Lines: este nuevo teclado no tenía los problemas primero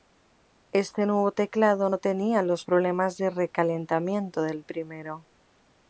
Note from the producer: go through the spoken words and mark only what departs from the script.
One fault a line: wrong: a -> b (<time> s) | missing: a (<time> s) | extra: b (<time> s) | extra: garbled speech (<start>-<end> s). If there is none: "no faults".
extra: de recalentamiento del (3.2 s)